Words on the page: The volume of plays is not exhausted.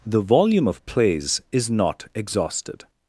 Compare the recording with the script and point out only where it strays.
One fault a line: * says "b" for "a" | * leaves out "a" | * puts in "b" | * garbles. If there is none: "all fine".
all fine